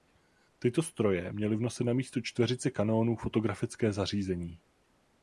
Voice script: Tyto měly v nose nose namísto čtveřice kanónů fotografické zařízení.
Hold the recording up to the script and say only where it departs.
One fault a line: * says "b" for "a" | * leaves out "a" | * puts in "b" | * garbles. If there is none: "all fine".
* puts in "stroje"
* leaves out "nose"